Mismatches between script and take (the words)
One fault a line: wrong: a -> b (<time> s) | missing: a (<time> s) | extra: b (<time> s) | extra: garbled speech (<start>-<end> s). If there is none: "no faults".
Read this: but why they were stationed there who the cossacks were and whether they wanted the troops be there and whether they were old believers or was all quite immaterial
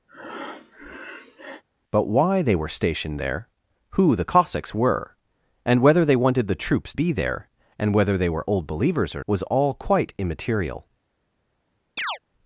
no faults